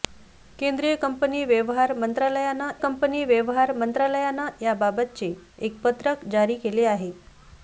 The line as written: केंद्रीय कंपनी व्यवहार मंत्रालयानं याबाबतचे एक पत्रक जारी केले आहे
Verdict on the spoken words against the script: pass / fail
fail